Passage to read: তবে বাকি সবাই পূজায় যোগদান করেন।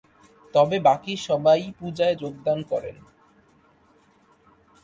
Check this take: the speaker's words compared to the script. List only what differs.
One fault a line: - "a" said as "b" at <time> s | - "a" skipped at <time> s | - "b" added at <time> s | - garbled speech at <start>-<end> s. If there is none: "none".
none